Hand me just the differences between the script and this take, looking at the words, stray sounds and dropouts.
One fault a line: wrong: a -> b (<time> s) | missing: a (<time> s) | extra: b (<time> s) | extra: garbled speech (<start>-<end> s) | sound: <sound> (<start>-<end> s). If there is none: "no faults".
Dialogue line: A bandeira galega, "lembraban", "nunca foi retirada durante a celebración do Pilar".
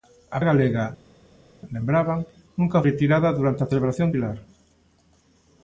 missing: bandeira (0.4 s)
missing: foi (2.9 s)
missing: do (4.1 s)